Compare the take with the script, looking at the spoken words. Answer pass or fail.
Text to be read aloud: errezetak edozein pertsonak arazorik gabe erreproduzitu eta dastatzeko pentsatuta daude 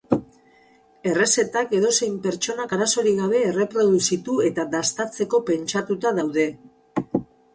pass